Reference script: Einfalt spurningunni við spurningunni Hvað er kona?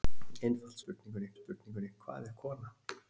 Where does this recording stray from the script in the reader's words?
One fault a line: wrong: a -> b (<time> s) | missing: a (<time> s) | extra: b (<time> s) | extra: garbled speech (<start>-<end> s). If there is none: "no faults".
no faults